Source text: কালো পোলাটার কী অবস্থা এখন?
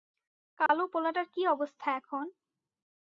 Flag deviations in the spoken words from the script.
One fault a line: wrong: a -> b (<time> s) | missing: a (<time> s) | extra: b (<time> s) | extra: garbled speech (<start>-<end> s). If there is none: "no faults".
no faults